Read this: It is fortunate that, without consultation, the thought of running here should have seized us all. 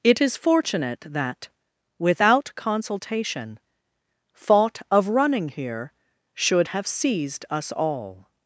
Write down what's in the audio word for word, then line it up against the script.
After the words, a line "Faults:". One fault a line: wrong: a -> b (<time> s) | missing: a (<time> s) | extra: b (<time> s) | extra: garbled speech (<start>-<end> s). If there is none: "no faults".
It is fortunate that, without consultation, thought of running here should have seized us all.
Faults:
missing: the (3.6 s)